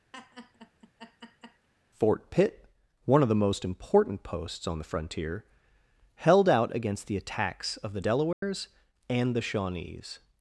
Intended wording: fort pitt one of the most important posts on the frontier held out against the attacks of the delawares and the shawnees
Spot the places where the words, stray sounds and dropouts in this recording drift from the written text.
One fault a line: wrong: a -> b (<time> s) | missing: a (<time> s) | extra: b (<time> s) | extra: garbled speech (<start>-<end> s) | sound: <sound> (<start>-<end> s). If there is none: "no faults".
sound: laugh (0.1-1.7 s)
sound: dropout (8.3-8.4 s)